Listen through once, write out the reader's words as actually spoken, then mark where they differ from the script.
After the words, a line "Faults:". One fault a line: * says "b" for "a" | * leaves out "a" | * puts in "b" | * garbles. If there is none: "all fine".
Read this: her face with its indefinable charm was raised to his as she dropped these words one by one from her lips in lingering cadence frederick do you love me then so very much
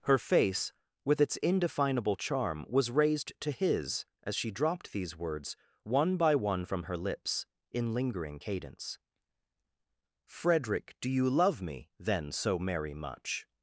her face with its indefinable charm was raised to his as she dropped these words one by one from her lips in lingering cadence frederick do you love me then so merry much
Faults:
* says "merry" for "very"